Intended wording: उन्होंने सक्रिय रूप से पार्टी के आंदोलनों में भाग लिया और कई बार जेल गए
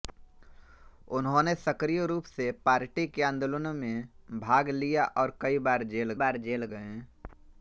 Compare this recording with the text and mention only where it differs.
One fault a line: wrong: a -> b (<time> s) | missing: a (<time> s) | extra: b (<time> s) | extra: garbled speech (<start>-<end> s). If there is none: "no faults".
extra: बार जेल (6.2 s)